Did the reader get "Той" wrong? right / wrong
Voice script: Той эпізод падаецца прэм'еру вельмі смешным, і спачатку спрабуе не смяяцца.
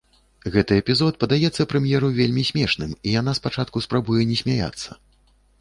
wrong